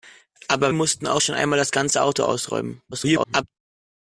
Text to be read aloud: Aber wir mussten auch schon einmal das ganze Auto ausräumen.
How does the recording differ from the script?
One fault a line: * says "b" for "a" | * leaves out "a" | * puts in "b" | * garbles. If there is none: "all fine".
* leaves out "wir"
* garbles